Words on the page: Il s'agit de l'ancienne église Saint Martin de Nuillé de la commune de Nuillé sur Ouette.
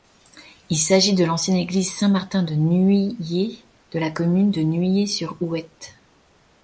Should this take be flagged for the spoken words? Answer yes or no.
no